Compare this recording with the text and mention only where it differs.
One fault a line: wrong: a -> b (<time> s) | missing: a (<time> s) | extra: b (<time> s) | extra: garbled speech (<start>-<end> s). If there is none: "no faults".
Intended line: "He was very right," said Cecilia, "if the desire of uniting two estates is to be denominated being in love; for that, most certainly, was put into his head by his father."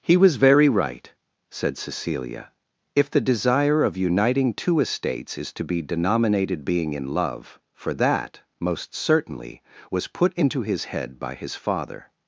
no faults